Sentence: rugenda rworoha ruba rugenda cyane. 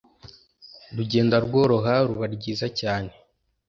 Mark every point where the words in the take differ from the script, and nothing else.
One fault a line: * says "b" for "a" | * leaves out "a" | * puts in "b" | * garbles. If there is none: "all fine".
* says "ryiza" for "rugenda"